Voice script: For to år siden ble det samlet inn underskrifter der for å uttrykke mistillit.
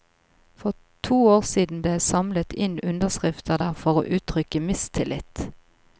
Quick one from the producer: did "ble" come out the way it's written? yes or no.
no